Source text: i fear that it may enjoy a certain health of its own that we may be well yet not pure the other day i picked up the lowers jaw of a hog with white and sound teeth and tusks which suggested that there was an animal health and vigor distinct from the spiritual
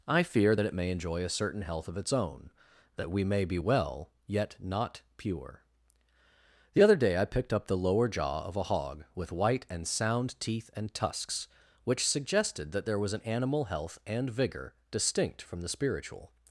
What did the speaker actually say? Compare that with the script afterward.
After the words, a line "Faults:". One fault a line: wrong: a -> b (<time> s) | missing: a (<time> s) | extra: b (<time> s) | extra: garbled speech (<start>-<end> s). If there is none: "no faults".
i fear that it may enjoy a certain health of its own that we may be well yet not pure the other day i picked up the lower jaw of a hog with white and sound teeth and tusks which suggested that there was an animal health and vigor distinct from the spiritual
Faults:
wrong: lowers -> lower (7.8 s)